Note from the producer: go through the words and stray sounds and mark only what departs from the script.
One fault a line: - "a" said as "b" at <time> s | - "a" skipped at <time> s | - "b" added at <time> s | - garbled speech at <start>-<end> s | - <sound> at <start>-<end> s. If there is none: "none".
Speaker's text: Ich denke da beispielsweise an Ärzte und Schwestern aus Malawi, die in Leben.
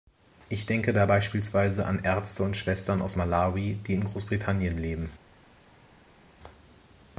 - "Großbritannien" added at 4.0 s